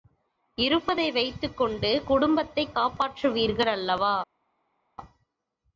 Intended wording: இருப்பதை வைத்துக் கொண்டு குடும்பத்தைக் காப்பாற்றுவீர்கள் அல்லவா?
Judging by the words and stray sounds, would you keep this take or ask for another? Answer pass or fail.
pass